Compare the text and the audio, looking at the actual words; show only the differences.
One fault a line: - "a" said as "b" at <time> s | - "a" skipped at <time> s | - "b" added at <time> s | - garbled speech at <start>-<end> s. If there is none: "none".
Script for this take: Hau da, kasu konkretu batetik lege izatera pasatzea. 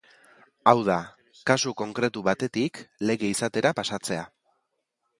none